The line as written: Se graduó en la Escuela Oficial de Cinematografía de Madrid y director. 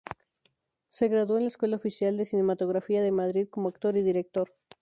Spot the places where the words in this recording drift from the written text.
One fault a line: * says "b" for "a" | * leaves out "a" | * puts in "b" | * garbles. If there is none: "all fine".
* puts in "como actor"